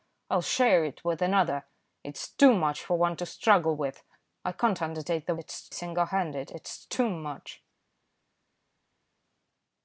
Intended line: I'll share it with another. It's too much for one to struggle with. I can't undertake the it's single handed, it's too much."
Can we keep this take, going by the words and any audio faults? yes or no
yes